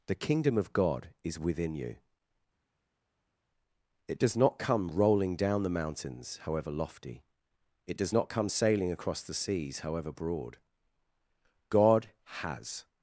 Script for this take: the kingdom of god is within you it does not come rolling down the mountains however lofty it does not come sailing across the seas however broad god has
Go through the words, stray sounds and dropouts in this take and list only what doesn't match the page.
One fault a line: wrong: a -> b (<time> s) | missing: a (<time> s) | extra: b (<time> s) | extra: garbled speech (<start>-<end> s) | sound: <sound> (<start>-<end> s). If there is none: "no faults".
no faults